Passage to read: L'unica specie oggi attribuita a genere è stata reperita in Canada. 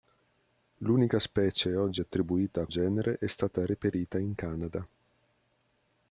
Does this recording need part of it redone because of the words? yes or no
no